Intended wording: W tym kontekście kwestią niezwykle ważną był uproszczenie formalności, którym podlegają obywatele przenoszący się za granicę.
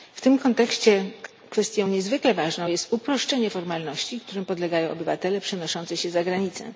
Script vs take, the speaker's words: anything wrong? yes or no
yes